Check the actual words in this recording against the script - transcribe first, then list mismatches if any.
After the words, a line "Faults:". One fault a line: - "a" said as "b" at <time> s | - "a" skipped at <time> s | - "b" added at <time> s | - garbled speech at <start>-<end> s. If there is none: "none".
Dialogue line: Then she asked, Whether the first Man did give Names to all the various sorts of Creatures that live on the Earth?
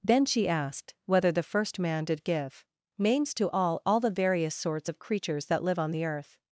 Then she asked, Whether the first Man did give Names to all all the various sorts of Creatures that live on the Earth?
Faults:
- "all" added at 3.9 s